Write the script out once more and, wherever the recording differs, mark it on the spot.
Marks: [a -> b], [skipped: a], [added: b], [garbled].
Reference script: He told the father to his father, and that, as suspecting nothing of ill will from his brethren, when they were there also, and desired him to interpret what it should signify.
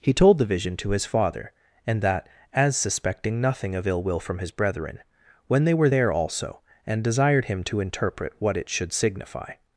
He told the [father -> vision] to his father, and that, as suspecting nothing of ill will from his brethren, when they were there also, and desired him to interpret what it should signify.